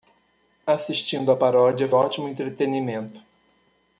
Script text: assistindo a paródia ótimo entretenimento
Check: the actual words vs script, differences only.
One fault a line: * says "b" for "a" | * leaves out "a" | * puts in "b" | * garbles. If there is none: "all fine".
all fine